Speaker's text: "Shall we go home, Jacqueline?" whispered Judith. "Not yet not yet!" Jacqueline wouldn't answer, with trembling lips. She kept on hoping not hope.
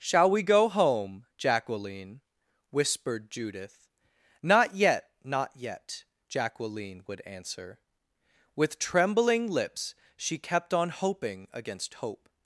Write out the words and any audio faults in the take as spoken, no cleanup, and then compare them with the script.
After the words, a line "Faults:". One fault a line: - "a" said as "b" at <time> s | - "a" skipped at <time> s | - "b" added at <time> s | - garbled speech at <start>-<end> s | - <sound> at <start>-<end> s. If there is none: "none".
"Shall we go home, Jacqueline?" whispered Judith. "Not yet not yet!" Jacqueline would answer, with trembling lips. She kept on hoping against hope.
Faults:
- "wouldn't" said as "would" at 7.0 s
- "not" said as "against" at 11.5 s